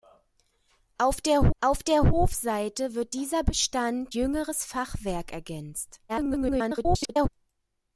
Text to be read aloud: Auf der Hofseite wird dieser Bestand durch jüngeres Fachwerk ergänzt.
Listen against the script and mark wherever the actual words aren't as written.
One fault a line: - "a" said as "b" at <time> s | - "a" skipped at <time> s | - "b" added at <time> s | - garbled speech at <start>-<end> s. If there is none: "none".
- "auf der" added at 1.6 s
- "durch" skipped at 4.1 s
- garbled speech at 6.1-7.3 s